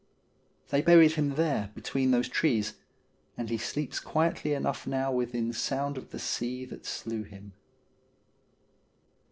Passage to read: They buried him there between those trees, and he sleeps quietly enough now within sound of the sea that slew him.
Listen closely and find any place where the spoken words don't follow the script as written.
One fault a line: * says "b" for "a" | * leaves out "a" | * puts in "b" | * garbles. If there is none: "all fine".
all fine